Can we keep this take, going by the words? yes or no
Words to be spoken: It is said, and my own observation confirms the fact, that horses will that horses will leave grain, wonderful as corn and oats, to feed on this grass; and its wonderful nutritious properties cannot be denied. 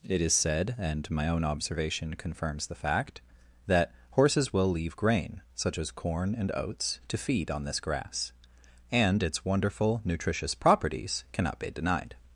no